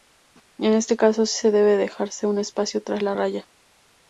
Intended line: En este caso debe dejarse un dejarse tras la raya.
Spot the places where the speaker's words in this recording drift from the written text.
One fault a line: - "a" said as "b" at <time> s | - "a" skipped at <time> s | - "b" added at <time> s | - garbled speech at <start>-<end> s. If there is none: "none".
- "sí" added at 1.3 s
- "dejarse" said as "espacio" at 2.4 s